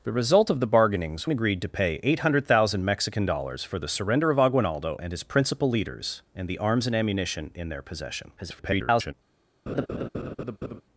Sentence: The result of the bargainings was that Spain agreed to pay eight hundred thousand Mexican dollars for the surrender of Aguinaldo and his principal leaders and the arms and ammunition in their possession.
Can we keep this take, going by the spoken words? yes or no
no